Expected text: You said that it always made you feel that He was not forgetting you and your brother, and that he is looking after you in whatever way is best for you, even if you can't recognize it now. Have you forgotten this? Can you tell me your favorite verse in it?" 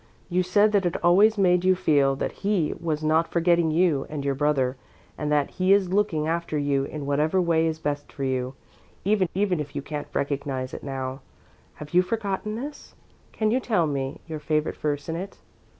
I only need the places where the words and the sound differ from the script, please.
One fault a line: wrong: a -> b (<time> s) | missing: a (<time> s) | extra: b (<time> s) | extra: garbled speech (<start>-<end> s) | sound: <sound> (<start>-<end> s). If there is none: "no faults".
extra: even (9.3 s)